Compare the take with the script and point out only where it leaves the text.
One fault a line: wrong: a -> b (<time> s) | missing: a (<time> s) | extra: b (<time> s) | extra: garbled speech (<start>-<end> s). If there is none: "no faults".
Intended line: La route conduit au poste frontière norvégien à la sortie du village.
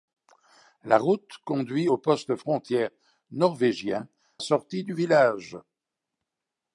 missing: à la (4.1 s)